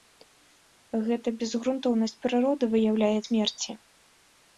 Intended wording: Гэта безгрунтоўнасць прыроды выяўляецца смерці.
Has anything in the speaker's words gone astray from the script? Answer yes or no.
no